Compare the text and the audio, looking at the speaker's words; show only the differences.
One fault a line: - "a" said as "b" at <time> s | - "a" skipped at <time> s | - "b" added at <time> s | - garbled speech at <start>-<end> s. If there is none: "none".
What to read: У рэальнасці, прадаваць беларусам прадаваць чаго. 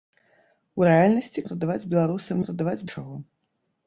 none